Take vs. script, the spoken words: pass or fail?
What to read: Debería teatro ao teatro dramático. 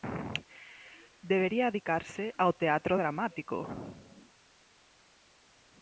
fail